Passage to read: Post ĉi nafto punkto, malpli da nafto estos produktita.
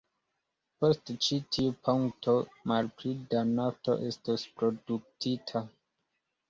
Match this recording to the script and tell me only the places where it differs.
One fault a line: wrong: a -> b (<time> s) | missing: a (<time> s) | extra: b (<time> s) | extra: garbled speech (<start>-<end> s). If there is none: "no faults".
wrong: nafto -> tiu (1.6 s)